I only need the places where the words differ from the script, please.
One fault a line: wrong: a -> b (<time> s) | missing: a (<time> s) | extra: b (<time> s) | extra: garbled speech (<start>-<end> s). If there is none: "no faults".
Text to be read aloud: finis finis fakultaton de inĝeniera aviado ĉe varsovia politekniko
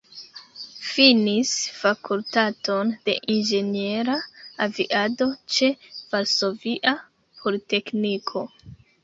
missing: finis (1.5 s)